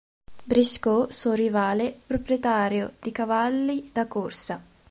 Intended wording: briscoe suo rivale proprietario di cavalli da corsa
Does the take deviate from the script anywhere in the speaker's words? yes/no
no